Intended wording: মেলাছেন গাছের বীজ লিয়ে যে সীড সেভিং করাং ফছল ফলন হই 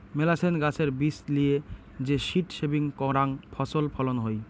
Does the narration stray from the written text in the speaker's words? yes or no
no